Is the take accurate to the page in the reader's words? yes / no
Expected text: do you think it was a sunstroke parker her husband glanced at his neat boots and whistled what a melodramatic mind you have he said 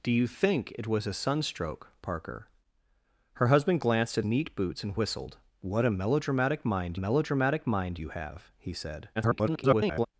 no